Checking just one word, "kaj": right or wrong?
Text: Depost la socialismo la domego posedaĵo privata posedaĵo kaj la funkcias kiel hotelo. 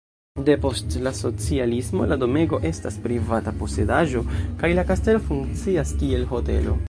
right